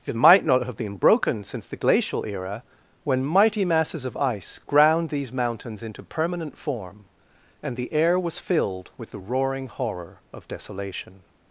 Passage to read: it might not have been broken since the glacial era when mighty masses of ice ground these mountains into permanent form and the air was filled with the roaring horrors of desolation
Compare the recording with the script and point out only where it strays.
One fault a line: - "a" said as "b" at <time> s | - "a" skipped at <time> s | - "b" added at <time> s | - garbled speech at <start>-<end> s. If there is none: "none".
- "horrors" said as "horror" at 9.7 s